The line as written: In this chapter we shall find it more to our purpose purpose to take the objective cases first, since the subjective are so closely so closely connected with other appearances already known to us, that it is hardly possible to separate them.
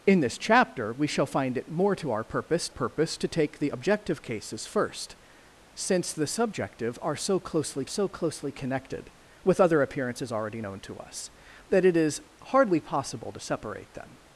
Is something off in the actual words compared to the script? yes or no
no